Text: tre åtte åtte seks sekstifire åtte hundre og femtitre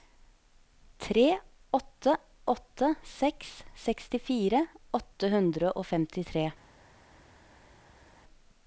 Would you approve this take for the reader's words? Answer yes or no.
yes